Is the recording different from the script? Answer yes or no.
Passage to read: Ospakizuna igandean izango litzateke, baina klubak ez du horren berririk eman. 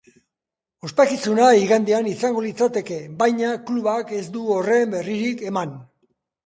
no